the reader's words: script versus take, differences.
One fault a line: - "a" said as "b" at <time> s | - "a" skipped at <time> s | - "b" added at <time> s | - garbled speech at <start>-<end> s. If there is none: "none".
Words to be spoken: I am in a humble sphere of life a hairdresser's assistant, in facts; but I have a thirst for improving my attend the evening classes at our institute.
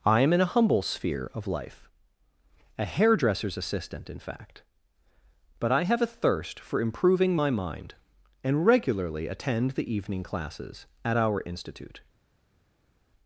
- "facts" said as "fact" at 4.2 s
- "mind and regularly" added at 7.5 s